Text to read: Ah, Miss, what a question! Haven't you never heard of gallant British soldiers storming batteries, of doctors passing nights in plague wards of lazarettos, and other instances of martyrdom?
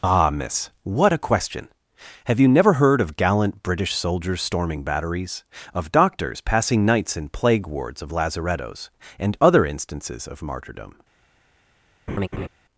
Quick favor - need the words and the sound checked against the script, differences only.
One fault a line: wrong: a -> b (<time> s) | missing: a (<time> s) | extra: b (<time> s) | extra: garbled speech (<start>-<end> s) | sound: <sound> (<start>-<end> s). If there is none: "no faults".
wrong: Haven't -> Have (2.2 s)
sound: laugh (12.1-12.5 s)